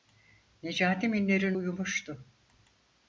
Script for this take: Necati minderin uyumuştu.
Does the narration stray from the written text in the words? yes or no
no